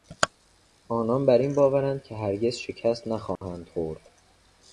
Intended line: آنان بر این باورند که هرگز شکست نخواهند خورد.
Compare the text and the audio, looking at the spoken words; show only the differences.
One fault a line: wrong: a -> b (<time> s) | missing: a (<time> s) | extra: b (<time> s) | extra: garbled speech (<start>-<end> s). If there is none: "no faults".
no faults